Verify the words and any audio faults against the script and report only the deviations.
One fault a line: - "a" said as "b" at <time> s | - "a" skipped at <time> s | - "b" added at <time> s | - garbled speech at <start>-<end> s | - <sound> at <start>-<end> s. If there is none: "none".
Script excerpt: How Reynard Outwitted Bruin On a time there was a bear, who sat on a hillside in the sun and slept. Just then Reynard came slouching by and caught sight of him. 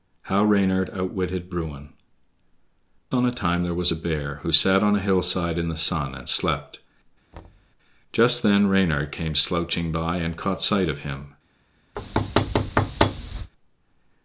- thud at 7.3-7.7 s
- thud at 12.0-13.5 s